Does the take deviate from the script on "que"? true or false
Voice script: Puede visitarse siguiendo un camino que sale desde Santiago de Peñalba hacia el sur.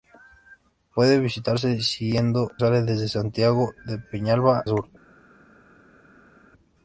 true